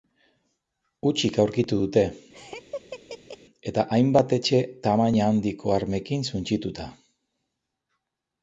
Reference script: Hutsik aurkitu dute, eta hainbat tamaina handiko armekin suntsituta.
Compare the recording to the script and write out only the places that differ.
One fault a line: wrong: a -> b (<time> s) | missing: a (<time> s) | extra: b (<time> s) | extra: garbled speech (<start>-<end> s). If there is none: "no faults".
extra: etxe (4.4 s)